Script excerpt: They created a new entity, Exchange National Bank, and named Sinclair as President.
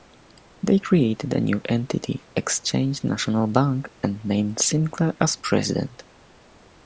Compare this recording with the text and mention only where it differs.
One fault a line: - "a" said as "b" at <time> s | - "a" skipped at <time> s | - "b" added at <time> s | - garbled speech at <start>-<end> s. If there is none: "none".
none